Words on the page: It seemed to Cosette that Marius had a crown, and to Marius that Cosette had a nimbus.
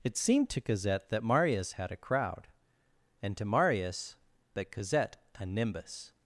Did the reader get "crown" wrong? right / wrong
wrong